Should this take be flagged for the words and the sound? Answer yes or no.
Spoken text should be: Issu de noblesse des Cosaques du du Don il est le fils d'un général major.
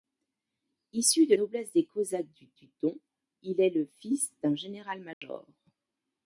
yes